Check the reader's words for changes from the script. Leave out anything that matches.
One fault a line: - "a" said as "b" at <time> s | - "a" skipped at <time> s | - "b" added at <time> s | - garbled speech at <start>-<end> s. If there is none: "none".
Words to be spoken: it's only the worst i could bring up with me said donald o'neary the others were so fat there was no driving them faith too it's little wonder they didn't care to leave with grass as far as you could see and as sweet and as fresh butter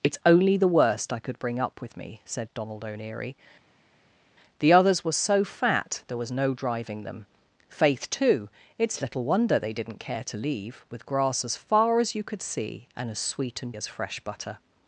none